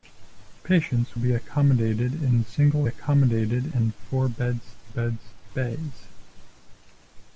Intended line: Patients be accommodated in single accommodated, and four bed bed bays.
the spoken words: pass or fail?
pass